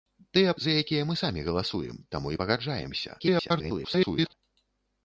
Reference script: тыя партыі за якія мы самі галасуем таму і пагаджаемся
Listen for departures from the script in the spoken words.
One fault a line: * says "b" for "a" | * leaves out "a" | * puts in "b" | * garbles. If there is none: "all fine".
* leaves out "партыі"
* garbles